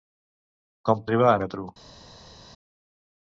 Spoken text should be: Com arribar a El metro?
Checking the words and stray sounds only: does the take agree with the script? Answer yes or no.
yes